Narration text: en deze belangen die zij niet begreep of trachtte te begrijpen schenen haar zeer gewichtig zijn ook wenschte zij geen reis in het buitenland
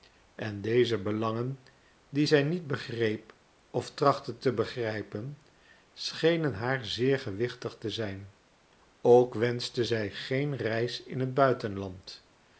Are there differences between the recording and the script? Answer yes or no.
yes